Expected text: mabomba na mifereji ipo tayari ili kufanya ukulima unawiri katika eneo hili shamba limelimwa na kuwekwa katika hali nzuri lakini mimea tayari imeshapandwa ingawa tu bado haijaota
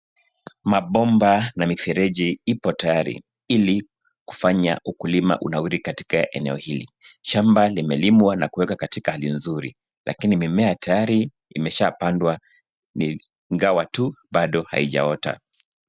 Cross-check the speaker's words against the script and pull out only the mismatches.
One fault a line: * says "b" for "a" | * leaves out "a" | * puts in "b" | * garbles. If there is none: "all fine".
all fine